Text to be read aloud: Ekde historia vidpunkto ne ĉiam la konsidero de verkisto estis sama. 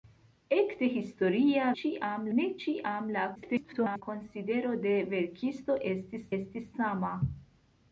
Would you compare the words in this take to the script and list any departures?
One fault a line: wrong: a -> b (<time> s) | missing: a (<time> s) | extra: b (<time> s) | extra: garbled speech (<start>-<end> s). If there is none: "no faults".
wrong: vidpunkto -> ĉiam (1.8 s)
extra: garbled speech (3.3-4.0 s)
extra: estis (6.4 s)